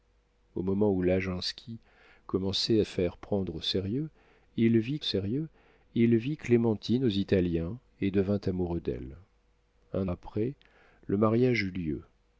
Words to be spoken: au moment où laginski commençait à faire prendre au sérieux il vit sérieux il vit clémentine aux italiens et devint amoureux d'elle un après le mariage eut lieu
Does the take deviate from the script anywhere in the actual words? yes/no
no